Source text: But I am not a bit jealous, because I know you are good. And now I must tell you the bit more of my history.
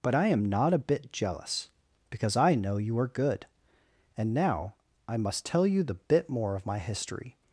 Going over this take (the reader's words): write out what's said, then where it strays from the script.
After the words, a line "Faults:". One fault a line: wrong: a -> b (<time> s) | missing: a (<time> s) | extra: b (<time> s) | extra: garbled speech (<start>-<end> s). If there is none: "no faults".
But I am not a bit jealous, because I know you are good. And now I must tell you the bit more of my history.
Faults:
no faults